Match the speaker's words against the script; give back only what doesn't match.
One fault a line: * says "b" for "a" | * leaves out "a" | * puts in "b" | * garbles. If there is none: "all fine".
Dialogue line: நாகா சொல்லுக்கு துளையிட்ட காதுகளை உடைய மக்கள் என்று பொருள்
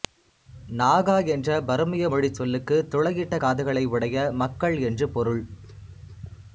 * puts in "என்ற பருமிய மொழிச்"